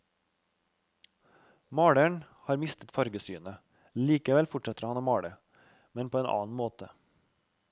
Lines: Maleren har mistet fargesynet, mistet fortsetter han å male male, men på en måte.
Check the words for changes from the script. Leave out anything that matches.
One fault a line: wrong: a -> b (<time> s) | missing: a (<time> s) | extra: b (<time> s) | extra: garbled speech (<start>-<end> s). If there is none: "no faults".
wrong: mistet -> likevel (3.9 s)
missing: male (5.4 s)
extra: annen (6.3 s)